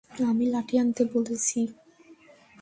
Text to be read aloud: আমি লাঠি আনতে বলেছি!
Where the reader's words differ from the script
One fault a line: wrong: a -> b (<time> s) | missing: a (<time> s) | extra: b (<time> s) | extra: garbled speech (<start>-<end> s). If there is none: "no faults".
no faults